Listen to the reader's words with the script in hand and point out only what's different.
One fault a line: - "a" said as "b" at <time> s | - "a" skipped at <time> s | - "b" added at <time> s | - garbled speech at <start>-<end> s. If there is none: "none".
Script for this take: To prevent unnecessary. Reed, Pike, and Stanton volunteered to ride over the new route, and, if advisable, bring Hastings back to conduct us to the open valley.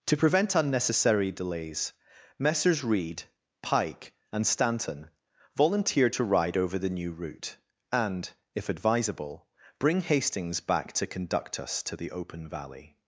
- "delays Messrs" added at 1.3 s